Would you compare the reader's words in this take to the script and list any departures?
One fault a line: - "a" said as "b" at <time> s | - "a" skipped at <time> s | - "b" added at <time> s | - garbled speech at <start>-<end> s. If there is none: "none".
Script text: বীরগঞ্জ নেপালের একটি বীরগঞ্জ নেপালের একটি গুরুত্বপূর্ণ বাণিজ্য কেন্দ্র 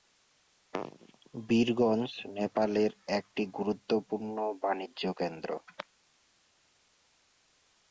- "বীরগঞ্জ নেপালের একটি" skipped at 3.4 s